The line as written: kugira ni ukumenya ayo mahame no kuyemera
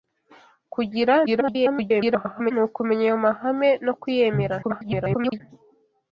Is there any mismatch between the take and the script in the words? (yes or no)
yes